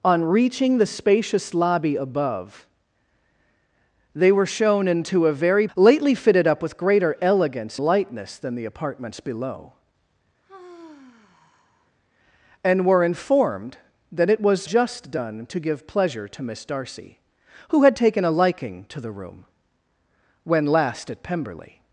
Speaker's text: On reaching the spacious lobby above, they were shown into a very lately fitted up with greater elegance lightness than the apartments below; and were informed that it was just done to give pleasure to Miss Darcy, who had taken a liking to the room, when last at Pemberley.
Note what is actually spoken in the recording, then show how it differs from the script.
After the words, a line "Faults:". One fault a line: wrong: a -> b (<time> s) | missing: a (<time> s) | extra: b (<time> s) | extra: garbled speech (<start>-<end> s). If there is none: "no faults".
On reaching the spacious lobby above, they were shown into a very lately fitted up with greater elegance lightness than the apartments below; and were informed that it was just done to give pleasure to Miss Darcy, who had taken a liking to the room, when last at Pemberley.
Faults:
no faults